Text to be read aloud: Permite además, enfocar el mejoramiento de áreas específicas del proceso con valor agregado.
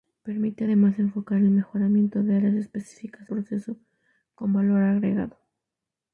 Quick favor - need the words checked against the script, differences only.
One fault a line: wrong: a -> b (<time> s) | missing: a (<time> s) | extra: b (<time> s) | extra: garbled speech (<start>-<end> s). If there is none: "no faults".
missing: del (3.3 s)